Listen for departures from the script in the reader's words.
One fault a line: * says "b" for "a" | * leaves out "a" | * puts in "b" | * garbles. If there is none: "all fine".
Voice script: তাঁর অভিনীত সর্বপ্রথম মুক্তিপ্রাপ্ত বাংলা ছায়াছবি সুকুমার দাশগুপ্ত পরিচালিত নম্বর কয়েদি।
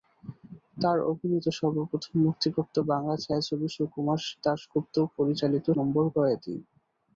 all fine